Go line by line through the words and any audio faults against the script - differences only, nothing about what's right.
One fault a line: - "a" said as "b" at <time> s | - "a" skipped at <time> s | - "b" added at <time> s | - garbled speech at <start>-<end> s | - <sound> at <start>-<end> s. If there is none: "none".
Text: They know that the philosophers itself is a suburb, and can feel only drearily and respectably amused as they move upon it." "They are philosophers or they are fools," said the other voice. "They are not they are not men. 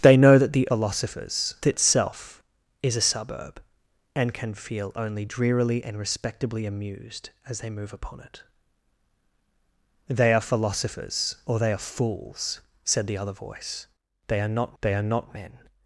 none